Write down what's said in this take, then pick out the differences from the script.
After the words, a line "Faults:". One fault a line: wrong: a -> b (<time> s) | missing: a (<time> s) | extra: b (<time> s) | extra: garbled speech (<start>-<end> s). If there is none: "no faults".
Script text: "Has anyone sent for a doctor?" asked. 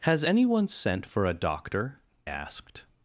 "Has anyone sent for a doctor?" asked.
Faults:
no faults